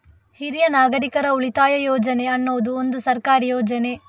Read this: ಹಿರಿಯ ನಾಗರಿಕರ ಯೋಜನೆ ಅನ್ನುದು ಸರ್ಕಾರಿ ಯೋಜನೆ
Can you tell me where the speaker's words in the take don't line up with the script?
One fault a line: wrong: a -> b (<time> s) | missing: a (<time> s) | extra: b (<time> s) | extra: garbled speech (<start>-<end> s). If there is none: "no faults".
extra: ಉಳಿತಾಯ (1.3 s)
extra: ಒಂದು (2.8 s)